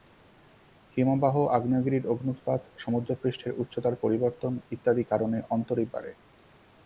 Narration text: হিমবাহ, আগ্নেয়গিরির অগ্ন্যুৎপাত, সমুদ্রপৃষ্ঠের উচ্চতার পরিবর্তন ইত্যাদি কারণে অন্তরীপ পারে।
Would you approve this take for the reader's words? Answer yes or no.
yes